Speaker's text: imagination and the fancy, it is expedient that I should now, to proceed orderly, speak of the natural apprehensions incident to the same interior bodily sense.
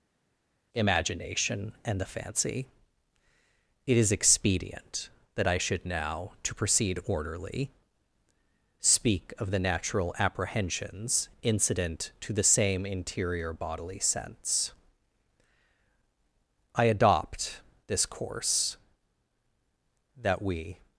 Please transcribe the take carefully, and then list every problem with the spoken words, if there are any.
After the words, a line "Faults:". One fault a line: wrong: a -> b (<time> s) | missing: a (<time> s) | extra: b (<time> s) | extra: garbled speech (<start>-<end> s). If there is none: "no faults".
imagination and the fancy, it is expedient that I should now, to proceed orderly, speak of the natural apprehensions incident to the same interior bodily sense. I adopt this course that we
Faults:
extra: I adopt this course that we (16.8 s)